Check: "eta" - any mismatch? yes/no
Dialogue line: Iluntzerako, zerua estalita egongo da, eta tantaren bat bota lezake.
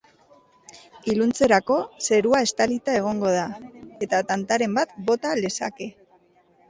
no